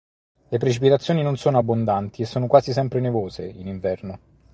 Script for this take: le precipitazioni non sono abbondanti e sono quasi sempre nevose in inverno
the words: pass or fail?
pass